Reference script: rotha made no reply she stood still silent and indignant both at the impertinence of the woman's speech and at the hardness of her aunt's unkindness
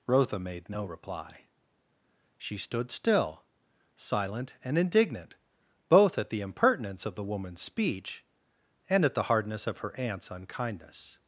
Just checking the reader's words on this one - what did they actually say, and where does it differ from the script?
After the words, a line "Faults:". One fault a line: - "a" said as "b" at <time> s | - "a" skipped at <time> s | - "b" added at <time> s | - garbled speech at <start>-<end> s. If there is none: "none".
rotha made no reply she stood still silent and indignant both at the impertinence of the woman's speech and at the hardness of her aunt's unkindness
Faults:
none